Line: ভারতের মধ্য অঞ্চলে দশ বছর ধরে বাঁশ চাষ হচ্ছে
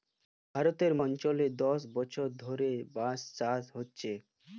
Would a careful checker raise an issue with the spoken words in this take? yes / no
yes